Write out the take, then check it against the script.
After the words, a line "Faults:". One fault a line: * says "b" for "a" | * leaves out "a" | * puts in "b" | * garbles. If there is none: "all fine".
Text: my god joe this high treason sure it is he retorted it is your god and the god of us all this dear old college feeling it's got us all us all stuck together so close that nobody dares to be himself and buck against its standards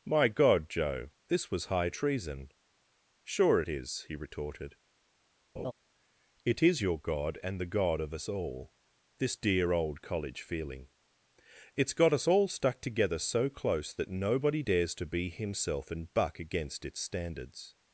my god joe this was high treason sure it is he retorted it is your god and the god of us all this dear old college feeling it's got us all stuck together so close that nobody dares to be himself and buck against its standards
Faults:
* puts in "was"
* leaves out "us all"